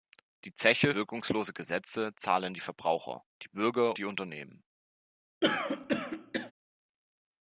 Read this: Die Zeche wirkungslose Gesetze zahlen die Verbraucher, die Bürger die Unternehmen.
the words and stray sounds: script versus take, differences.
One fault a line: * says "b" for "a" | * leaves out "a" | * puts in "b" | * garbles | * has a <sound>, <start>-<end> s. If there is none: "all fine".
* has a throat clearing, 5.4-6.5 s